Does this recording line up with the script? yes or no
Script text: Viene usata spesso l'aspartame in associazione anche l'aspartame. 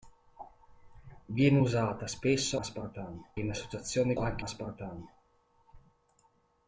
yes